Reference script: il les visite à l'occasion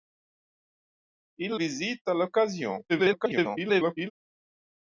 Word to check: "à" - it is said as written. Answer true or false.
true